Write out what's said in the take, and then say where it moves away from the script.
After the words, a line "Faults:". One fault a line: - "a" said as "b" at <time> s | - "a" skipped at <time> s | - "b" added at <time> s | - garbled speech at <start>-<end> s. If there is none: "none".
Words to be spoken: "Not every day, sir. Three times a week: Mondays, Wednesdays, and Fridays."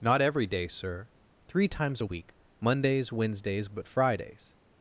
"Not every day, sir. Three times a week: Mondays, Wednesdays, but Fridays."
Faults:
- "and" said as "but" at 3.7 s